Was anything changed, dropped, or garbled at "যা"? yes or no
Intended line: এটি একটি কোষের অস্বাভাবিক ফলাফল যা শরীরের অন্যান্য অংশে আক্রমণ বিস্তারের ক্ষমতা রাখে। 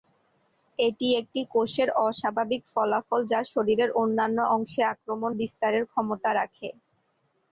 no